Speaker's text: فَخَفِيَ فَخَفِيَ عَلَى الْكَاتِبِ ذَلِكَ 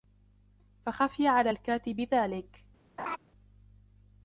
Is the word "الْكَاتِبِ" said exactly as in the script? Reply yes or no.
yes